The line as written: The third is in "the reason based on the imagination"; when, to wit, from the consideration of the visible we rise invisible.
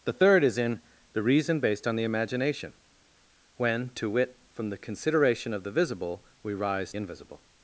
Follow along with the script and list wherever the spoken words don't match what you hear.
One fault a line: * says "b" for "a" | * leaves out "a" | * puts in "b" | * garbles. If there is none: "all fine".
all fine